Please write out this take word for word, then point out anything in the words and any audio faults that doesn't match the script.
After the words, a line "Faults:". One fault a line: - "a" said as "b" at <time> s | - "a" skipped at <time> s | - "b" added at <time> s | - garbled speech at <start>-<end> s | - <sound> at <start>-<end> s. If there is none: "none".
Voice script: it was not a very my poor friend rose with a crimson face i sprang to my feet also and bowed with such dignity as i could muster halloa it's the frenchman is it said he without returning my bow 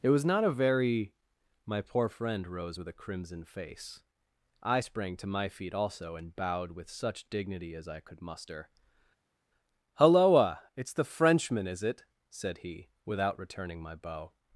it was not a very my poor friend rose with a crimson face i sprang to my feet also and bowed with such dignity as i could muster halloa it's the frenchman is it said he without returning my bow
Faults:
none